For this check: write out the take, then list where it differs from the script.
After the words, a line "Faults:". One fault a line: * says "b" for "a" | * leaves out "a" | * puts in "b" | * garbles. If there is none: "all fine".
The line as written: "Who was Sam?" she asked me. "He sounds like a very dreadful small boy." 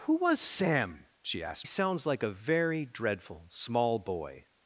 "Who was Sam?" she asked sounds like a very dreadful small boy."
Faults:
* leaves out "me He"